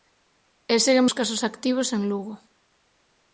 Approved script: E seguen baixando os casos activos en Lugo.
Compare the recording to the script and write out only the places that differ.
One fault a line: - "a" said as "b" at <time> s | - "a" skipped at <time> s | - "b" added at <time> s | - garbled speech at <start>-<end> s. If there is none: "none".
- "baixando" skipped at 1.1 s